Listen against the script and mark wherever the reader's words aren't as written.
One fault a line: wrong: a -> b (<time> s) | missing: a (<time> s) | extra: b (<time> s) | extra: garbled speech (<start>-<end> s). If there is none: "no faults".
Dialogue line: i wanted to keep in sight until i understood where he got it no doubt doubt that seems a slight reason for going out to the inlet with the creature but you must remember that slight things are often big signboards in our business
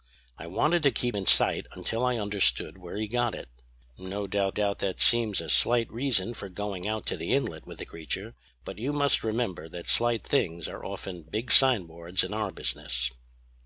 no faults